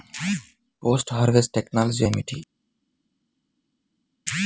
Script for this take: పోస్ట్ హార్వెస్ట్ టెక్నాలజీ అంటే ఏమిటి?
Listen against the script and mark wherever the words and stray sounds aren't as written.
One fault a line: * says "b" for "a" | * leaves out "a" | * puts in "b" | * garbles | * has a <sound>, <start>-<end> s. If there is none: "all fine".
* leaves out "అంటే"